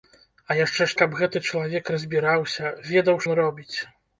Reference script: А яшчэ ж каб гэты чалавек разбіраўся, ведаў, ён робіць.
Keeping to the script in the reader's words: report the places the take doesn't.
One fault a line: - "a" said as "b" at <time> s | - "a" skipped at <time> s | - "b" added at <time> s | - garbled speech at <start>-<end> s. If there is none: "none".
none